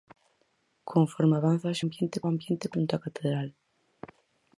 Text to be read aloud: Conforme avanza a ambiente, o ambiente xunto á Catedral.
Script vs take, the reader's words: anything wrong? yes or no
no